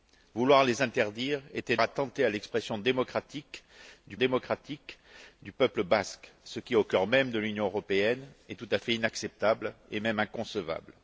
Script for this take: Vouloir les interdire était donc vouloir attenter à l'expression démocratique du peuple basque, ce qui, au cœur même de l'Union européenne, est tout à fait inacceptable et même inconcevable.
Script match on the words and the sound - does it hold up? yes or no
no